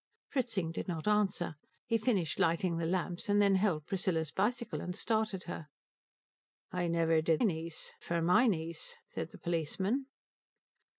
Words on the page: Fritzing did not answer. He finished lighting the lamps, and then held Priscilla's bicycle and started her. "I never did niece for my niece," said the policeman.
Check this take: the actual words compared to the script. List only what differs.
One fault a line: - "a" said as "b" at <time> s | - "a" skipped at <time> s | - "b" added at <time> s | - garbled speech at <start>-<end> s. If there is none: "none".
none